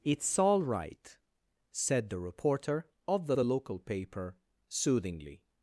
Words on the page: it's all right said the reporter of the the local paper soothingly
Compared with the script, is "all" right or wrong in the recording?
right